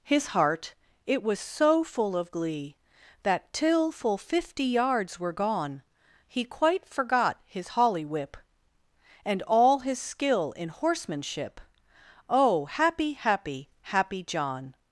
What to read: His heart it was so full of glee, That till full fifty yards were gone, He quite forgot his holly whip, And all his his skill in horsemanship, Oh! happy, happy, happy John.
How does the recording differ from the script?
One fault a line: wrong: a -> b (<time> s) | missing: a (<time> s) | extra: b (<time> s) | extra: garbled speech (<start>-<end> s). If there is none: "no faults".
missing: his (10.0 s)